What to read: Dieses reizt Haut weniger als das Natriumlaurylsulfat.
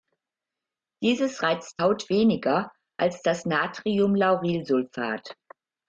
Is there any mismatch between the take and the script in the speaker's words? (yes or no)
no